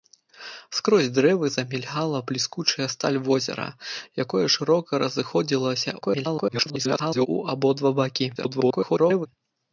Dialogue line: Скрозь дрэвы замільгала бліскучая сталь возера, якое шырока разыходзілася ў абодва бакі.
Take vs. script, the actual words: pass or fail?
fail